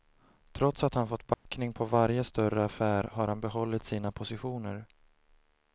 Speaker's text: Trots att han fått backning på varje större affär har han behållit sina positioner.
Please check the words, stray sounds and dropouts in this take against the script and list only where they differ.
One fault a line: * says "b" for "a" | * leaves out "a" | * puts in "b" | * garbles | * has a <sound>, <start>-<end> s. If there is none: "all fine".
* has a dropout, 1.3-1.5 s